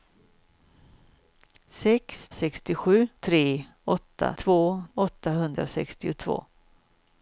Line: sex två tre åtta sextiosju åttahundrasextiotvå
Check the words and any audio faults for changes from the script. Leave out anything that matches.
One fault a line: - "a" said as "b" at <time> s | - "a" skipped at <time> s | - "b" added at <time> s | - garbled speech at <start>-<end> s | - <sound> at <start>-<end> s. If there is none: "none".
- "två" said as "sextiosju" at 2.3 s
- "sextiosju" said as "två" at 4.3 s